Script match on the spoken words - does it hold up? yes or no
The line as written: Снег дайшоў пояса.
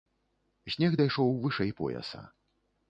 no